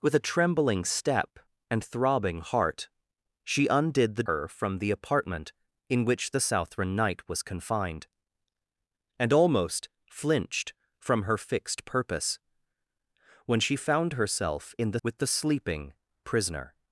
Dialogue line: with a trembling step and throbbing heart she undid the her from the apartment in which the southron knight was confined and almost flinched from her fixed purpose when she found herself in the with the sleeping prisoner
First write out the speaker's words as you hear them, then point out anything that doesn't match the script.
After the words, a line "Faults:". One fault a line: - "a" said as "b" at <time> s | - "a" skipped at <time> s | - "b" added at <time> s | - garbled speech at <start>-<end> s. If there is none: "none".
with a trembling step and throbbing heart she undid the her from the apartment in which the southron knight was confined and almost flinched from her fixed purpose when she found herself in the with the sleeping prisoner
Faults:
none